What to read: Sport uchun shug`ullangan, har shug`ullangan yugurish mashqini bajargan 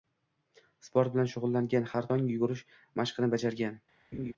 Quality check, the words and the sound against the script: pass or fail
fail